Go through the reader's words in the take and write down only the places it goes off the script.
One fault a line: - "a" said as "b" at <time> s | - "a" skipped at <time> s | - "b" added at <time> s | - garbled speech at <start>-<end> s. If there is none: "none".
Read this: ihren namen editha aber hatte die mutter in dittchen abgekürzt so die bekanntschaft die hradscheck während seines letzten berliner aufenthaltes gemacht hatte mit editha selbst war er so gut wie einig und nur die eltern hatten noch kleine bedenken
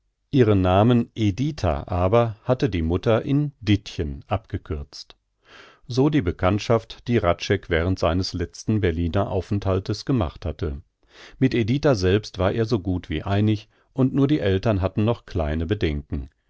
none